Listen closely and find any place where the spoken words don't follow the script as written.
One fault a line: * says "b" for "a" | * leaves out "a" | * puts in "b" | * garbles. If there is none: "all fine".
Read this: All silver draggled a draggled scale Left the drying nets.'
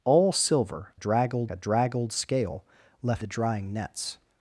all fine